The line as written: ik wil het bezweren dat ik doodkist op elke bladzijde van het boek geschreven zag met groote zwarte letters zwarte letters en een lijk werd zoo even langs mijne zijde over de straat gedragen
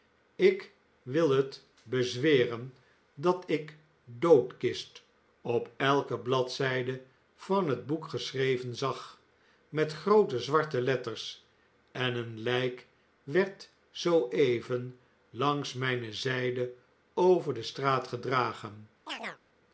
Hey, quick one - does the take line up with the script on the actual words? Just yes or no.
no